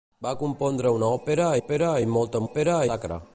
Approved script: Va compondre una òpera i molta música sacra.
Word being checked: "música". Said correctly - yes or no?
no